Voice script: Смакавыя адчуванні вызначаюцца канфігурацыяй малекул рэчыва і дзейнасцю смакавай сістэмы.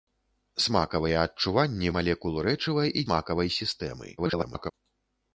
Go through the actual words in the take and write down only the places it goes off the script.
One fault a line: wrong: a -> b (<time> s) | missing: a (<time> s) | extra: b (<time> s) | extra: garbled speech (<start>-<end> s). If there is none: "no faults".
missing: вызначаюцца канфігурацыяй (1.9 s)
missing: дзейнасцю (3.1 s)
extra: garbled speech (4.2-4.7 s)